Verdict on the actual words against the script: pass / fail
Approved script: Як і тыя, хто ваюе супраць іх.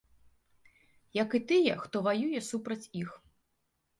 pass